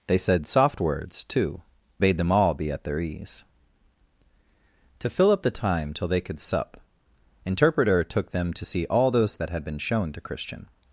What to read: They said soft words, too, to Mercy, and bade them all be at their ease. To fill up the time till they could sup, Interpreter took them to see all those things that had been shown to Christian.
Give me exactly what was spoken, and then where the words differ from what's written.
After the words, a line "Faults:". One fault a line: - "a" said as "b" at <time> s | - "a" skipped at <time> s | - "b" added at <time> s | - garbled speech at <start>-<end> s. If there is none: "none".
They said soft words, too, bade them all be at their ease. To fill up the time till they could sup, Interpreter took them to see all those that had been shown to Christian.
Faults:
- "to Mercy and" skipped at 1.6 s
- "things" skipped at 9.4 s